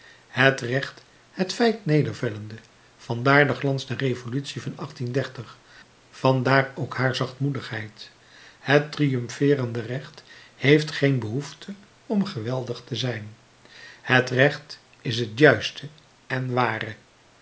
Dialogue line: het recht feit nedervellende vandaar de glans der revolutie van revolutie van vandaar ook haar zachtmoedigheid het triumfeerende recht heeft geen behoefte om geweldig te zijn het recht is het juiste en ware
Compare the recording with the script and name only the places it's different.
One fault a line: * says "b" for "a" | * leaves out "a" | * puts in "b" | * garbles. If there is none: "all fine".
* puts in "het"
* leaves out "revolutie van"